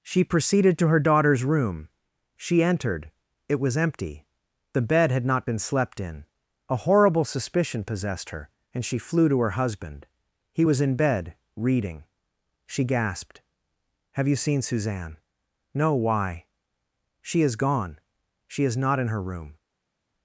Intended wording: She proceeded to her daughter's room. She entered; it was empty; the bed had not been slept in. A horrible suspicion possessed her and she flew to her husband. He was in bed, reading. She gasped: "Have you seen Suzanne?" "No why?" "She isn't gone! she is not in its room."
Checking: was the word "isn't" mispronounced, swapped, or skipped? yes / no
yes